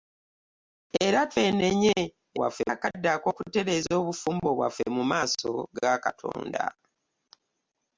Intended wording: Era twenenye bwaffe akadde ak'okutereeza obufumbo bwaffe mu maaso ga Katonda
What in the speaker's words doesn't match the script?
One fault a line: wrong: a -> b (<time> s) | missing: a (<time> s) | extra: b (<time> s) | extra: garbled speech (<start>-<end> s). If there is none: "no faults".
no faults